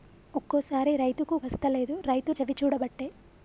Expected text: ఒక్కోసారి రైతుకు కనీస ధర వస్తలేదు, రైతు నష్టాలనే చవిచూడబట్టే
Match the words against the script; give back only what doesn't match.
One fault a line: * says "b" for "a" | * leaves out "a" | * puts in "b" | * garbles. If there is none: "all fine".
* leaves out "కనీస ధర"
* leaves out "నష్టాలనే"